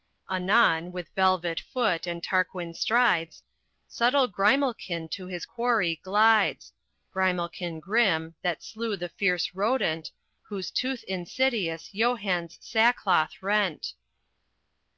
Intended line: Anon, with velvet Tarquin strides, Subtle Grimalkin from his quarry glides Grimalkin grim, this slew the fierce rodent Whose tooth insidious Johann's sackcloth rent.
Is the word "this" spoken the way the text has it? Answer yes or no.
no